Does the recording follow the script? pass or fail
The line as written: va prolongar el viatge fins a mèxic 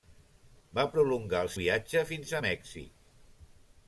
pass